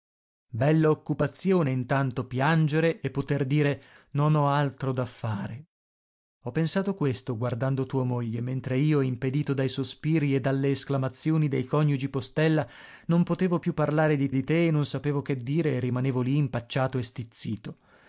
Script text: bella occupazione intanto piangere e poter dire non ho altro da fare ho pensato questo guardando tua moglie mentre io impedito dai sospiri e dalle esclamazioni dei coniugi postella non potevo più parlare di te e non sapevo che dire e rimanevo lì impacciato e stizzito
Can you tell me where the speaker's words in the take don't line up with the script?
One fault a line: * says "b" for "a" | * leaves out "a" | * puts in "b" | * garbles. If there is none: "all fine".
* puts in "di"